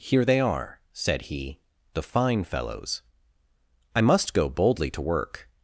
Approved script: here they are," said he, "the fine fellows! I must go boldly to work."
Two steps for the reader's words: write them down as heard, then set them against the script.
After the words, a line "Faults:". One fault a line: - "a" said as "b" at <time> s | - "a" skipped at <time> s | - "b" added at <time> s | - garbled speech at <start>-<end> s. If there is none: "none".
here they are," said he, "the fine fellows! I must go boldly to work."
Faults:
none